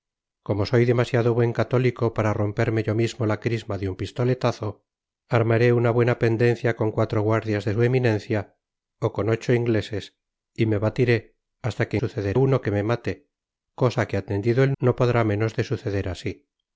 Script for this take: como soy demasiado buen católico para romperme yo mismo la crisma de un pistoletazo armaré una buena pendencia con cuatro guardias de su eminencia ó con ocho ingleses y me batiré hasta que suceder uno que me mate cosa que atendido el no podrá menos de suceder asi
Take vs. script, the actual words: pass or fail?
pass